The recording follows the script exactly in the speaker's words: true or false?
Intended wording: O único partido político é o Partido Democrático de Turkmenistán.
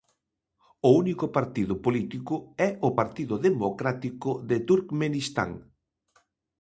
true